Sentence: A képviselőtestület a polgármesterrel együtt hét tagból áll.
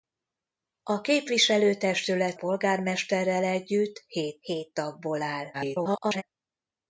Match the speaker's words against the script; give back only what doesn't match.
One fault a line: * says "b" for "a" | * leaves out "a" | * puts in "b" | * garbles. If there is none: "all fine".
* leaves out "a"
* puts in "hét"
* garbles